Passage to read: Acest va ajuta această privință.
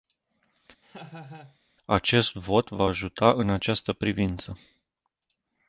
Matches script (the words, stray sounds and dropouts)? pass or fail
fail